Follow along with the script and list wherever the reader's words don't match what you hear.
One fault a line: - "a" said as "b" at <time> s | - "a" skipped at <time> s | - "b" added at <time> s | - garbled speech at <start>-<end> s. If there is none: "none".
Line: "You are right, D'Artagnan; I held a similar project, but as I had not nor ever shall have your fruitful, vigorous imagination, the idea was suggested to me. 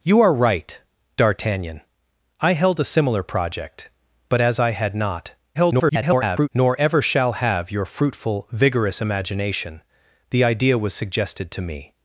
- garbled speech at 5.5-6.5 s